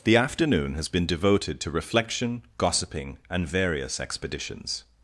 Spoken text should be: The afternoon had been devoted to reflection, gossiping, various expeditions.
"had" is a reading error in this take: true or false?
true